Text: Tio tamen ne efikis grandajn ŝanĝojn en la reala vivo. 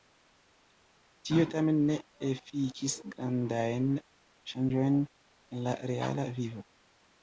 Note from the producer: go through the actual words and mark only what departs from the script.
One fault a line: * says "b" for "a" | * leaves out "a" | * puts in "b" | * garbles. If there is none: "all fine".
all fine